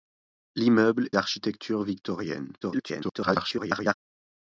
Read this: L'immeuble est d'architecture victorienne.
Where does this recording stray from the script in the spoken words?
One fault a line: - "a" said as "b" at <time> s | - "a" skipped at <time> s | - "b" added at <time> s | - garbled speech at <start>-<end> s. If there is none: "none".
- "est" skipped at 1.1 s
- garbled speech at 2.6-3.9 s